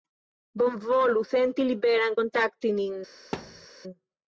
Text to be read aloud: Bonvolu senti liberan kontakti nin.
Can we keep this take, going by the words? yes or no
yes